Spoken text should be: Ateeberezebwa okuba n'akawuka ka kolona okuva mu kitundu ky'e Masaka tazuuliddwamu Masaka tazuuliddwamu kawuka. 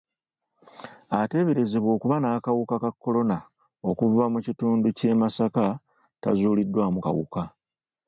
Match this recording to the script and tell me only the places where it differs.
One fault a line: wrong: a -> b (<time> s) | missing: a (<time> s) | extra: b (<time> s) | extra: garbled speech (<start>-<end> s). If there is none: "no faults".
missing: Masaka tazuuliddwamu (7.0 s)